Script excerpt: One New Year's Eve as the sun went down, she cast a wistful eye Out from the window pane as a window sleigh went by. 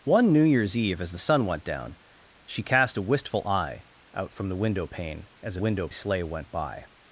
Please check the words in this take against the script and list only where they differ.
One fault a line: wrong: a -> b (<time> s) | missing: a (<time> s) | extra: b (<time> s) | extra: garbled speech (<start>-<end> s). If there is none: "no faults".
no faults